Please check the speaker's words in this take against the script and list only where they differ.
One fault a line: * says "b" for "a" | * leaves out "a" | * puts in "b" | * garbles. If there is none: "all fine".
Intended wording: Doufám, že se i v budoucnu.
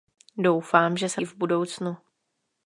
all fine